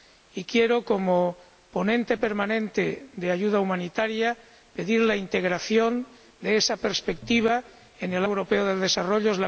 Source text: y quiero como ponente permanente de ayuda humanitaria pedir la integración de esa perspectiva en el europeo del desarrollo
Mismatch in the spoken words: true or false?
false